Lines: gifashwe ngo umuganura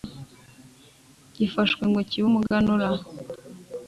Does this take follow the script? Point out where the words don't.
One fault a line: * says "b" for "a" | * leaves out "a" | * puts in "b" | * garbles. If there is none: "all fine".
* puts in "kibe"